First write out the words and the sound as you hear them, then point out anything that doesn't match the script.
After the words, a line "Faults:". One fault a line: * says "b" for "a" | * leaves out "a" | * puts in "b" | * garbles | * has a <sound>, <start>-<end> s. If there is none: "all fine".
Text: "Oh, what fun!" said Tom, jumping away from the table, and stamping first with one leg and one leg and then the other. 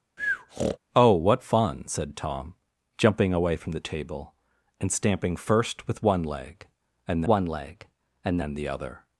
"Oh, what fun!" said Tom, jumping away from the table, and stamping first with one leg and one leg and then the other.
Faults:
* has a breath, 0.2-0.8 s